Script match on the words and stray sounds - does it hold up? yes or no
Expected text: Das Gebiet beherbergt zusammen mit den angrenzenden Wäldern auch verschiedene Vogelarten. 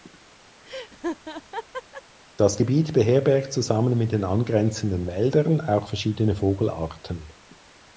no